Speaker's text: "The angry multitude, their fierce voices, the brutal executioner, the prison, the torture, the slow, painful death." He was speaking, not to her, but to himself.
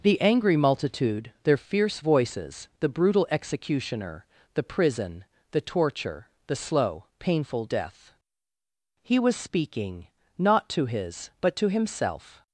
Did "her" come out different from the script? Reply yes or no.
yes